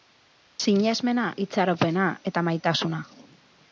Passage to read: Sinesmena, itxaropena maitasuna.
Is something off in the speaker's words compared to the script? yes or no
yes